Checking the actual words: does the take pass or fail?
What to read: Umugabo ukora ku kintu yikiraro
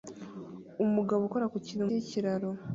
pass